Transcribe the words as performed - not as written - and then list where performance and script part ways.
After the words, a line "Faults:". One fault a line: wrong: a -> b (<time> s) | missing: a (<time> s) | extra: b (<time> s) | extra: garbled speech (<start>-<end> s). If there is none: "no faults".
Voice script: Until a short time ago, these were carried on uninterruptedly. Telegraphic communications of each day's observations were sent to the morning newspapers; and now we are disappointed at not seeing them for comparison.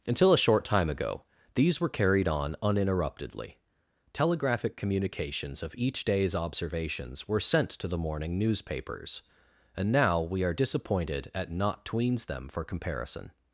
Until a short time ago, these were carried on uninterruptedly. Telegraphic communications of each day's observations were sent to the morning newspapers; and now we are disappointed at not tweens them for comparison.
Faults:
wrong: seeing -> tweens (11.8 s)